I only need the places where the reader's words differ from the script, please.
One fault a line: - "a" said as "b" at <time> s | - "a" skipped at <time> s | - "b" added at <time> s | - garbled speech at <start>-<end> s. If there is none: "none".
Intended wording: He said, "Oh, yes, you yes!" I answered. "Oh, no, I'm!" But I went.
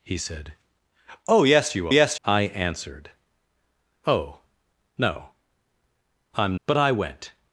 none